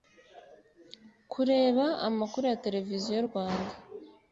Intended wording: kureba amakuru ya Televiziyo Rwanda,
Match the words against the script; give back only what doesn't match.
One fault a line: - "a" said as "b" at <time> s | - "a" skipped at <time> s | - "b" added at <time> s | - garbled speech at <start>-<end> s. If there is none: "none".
none